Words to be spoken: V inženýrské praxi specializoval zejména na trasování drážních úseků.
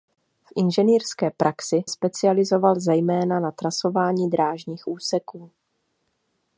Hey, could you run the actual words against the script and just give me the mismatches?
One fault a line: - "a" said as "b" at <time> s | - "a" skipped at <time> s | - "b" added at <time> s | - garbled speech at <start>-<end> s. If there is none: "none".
none